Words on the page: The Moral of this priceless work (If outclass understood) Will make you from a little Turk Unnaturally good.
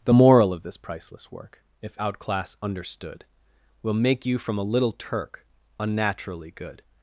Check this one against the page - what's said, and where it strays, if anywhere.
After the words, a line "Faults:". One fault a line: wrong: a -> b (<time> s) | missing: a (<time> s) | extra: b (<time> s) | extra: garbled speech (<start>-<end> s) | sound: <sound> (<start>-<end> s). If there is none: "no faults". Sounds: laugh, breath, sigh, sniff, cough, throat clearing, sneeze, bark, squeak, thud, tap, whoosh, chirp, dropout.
The Moral of this priceless work (If outclass understood) Will make you from a little Turk Unnaturally good.
Faults:
no faults